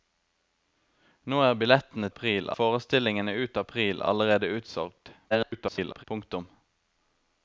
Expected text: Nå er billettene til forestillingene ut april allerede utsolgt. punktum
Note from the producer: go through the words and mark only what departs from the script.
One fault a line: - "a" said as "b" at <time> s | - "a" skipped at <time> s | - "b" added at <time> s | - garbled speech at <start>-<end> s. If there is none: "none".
- "til" said as "april" at 2.1 s
- garbled speech at 5.3-6.0 s